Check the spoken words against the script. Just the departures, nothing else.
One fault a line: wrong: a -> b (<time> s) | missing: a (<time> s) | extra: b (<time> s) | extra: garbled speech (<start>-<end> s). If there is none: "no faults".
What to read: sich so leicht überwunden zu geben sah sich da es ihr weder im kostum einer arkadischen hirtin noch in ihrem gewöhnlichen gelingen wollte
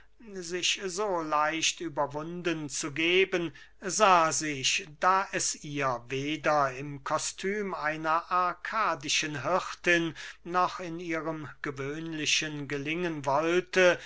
no faults